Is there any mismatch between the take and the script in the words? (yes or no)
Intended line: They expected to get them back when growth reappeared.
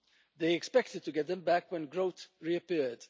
no